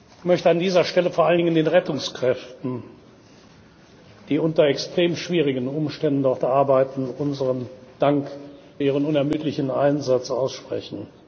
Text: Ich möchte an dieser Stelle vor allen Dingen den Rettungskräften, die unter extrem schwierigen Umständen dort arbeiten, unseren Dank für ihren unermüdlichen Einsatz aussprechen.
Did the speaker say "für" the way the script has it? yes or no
no